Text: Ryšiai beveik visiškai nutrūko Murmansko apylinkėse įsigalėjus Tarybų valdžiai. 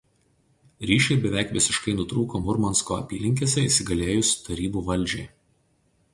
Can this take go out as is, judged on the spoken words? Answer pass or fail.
pass